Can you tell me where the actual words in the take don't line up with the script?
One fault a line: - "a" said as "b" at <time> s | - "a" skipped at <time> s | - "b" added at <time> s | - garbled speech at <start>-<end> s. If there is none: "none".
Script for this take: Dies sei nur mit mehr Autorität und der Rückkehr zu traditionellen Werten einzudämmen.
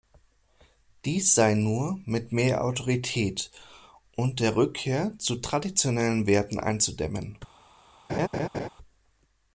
none